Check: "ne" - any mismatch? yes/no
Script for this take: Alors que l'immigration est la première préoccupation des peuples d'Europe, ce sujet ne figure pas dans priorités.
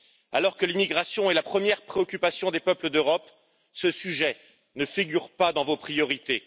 no